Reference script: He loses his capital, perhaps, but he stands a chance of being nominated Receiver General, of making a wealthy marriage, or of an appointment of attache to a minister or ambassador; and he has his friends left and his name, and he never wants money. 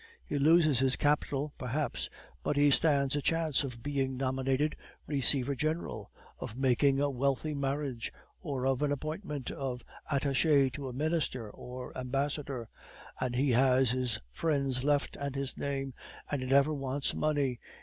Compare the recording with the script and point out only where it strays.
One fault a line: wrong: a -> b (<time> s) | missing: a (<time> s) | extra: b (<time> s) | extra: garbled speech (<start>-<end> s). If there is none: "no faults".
no faults